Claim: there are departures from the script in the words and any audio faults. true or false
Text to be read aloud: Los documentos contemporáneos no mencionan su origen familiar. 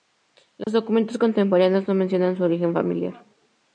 true